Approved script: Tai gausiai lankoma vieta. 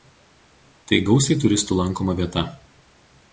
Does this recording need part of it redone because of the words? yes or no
yes